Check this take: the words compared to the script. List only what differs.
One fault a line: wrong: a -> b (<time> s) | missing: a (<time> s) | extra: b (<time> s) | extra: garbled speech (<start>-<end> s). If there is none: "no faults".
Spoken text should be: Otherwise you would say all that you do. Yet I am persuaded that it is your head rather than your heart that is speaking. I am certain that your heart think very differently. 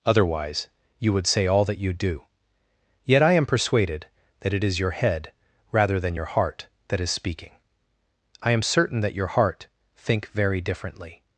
no faults